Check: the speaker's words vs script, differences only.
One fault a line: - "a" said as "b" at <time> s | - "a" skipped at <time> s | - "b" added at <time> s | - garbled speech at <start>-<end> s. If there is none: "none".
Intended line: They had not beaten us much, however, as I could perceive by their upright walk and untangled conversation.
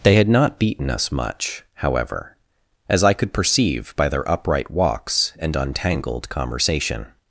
- "walk" said as "walks" at 4.7 s